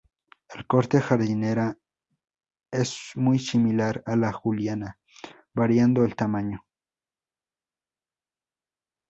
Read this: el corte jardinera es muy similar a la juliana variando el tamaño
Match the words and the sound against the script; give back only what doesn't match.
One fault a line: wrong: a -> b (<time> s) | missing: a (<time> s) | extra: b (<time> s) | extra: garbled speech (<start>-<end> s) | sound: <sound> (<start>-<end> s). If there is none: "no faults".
no faults